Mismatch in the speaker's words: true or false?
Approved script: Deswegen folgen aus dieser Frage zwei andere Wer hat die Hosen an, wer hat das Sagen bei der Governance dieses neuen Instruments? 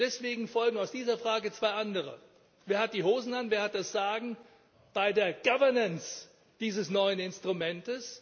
false